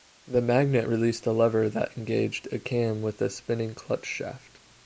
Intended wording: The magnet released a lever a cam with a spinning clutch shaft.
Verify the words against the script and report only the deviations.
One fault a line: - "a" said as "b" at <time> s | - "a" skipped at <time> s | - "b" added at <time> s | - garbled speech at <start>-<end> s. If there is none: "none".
- "that engaged" added at 1.7 s